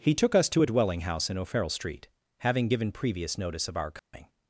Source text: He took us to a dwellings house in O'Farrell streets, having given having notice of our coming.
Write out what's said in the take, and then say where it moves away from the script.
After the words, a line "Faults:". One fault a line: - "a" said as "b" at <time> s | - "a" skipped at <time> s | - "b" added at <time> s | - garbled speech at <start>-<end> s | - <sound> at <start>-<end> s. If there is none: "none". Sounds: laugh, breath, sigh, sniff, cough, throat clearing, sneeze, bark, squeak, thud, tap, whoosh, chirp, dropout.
He took us to a dwelling house in O'Farrell street, having given previous notice of our coming.
Faults:
- "dwellings" said as "dwelling" at 0.6 s
- "streets" said as "street" at 1.7 s
- "having" said as "previous" at 2.9 s
- dropout at 4.0-4.1 s